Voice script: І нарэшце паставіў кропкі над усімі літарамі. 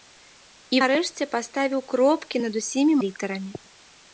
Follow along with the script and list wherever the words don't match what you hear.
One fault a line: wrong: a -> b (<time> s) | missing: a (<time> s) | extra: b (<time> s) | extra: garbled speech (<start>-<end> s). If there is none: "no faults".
no faults